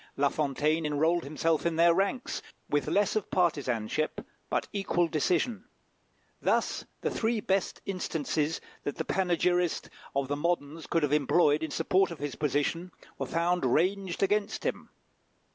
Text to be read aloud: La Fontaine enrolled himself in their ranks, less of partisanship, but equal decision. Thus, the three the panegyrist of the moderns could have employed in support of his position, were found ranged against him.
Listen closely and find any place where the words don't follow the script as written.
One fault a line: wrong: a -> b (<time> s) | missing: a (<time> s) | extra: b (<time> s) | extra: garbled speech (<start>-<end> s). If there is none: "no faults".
extra: with (2.7 s)
extra: best instances that (7.4 s)